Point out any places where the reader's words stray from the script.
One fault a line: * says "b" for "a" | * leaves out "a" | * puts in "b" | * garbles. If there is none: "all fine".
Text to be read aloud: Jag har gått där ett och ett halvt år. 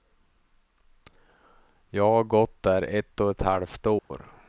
all fine